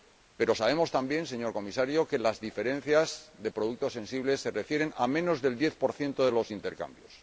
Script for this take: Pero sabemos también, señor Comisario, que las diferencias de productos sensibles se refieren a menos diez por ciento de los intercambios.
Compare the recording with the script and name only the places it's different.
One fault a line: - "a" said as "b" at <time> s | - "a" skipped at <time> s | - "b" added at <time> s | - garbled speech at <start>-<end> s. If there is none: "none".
- "del" added at 5.4 s